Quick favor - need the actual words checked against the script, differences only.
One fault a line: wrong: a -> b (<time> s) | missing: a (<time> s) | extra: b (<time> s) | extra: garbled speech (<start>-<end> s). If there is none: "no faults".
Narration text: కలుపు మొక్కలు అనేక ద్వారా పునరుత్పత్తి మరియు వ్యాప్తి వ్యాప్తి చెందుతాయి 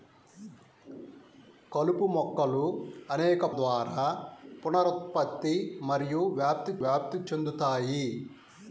no faults